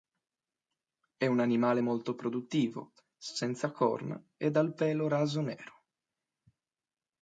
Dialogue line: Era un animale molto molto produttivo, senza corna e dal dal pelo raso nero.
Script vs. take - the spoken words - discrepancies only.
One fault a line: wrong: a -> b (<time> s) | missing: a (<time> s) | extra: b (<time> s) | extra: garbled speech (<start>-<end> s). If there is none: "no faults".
wrong: Era -> È (1.1 s)
missing: molto (2.1 s)
missing: dal (4.7 s)